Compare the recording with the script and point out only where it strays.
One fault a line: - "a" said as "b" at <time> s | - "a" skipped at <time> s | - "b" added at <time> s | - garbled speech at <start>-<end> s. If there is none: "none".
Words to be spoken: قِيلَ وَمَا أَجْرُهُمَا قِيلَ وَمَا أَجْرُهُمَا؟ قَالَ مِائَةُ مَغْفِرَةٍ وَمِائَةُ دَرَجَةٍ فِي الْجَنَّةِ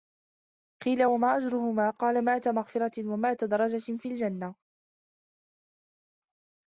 - "قِيلَ وَمَا أَجْرُهُمَا" skipped at 1.9 s